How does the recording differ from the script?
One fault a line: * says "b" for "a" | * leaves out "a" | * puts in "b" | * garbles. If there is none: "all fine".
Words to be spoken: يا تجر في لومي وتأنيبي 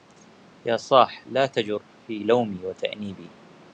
* puts in "صاح لا"